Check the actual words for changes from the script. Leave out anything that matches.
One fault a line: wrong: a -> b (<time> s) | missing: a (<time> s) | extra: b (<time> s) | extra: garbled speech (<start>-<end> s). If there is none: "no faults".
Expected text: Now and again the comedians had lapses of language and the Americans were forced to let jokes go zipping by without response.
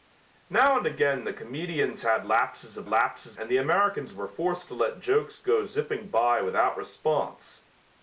wrong: language -> lapses (2.9 s)